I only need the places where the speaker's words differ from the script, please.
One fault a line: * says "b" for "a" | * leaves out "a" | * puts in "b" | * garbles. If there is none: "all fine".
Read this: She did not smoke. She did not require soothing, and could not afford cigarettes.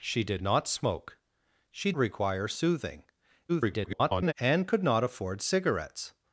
* leaves out "did not"
* garbles